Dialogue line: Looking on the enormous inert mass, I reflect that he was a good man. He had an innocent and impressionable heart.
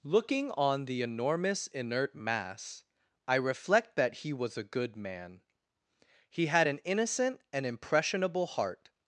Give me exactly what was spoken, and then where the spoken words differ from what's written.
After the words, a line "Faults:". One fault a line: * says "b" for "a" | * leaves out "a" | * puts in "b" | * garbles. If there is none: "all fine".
Looking on the enormous inert mass, I reflect that he was a good man. He had an innocent and impressionable heart.
Faults:
all fine